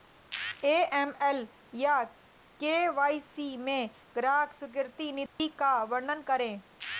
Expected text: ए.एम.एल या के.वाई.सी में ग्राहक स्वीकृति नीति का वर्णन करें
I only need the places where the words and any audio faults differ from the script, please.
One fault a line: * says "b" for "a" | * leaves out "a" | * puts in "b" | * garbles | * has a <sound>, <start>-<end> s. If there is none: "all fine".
* has a dropout, 5.3-5.4 s